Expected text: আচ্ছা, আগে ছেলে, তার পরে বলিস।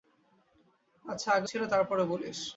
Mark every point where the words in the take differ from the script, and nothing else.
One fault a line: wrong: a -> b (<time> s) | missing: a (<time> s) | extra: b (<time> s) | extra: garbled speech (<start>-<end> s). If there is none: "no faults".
no faults